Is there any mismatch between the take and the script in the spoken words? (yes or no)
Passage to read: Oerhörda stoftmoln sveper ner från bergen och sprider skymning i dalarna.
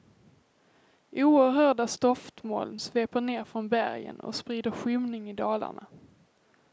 no